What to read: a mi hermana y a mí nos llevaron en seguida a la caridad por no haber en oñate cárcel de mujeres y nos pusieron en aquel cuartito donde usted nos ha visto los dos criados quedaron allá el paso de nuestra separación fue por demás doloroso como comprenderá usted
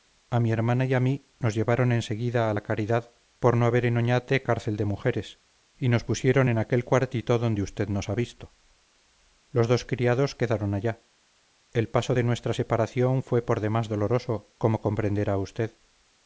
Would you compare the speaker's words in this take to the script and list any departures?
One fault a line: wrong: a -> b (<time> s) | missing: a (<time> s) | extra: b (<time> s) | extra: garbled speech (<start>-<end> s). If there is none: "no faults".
no faults